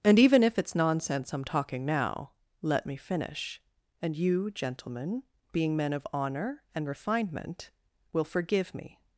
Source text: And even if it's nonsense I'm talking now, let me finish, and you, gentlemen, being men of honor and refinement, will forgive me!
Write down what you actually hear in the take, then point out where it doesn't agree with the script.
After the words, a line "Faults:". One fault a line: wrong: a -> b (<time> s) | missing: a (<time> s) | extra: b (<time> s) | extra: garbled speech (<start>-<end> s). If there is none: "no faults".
And even if it's nonsense I'm talking now, let me finish, and you, gentlemen, being men of honor and refinement, will forgive me!
Faults:
no faults